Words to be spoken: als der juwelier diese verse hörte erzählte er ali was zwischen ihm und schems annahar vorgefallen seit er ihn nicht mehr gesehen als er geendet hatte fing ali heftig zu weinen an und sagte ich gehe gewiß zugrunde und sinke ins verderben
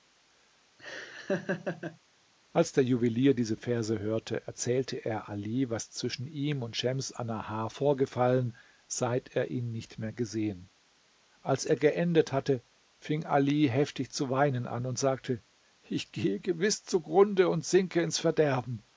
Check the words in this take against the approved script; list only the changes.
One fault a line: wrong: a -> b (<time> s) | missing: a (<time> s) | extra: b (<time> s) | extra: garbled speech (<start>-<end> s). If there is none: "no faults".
no faults